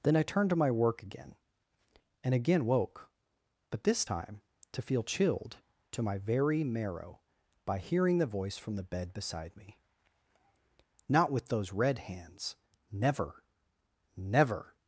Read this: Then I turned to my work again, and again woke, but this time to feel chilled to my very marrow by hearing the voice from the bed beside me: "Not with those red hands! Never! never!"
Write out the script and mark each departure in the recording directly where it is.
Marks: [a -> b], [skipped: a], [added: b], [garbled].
Then I turned to my work again, and again woke, but this time to feel chilled to my very marrow by hearing the voice from the bed beside me: "Not with those red hands! Never! never!"